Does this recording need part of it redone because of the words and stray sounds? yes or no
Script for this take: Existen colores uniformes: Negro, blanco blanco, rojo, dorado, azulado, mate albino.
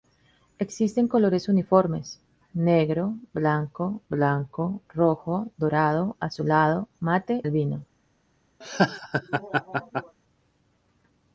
yes